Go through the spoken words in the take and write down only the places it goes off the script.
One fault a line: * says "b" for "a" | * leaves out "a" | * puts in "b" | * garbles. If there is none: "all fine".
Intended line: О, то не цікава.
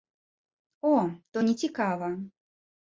all fine